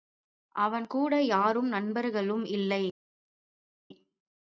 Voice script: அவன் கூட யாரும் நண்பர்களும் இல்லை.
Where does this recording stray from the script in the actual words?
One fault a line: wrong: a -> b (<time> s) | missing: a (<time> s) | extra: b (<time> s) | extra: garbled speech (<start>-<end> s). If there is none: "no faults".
no faults